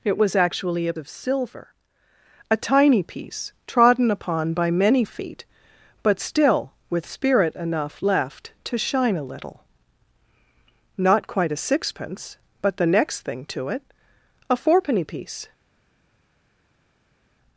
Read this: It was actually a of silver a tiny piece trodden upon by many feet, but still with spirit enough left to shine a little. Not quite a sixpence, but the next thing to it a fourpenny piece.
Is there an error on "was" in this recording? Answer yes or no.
no